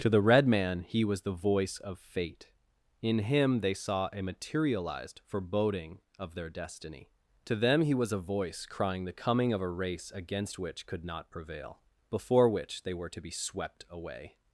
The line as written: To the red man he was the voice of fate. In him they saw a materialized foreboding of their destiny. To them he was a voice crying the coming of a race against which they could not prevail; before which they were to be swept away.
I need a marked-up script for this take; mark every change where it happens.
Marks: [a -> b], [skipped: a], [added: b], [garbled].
To the red man he was the voice of fate. In him they saw a materialized foreboding of their destiny. To them he was a voice crying the coming of a race against which [skipped: they] could not prevail; before which they were to be swept away.